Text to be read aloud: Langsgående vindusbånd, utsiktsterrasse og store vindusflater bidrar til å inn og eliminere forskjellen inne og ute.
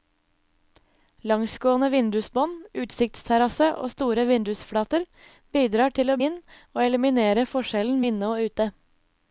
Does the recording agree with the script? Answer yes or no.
yes